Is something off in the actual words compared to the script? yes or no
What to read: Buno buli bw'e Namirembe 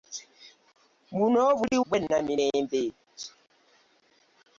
no